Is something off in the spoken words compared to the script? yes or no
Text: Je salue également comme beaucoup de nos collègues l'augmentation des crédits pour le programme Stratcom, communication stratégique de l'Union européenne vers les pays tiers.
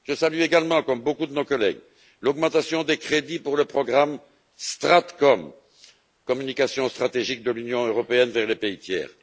no